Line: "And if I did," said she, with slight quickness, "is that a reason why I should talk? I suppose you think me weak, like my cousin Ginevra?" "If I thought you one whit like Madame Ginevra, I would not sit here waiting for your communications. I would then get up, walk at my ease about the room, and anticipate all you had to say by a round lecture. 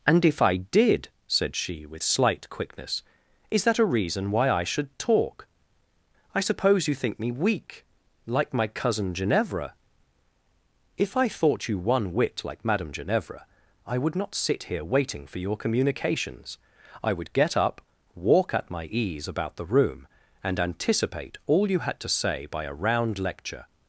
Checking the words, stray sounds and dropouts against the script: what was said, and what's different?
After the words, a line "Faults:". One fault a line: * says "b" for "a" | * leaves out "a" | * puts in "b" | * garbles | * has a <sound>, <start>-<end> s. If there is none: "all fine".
"And if I did," said she, with slight quickness, "is that a reason why I should talk? I suppose you think me weak, like my cousin Ginevra?" "If I thought you one whit like Madame Ginevra, I would not sit here waiting for your communications. I would get up, walk at my ease about the room, and anticipate all you had to say by a round lecture.
Faults:
* leaves out "then"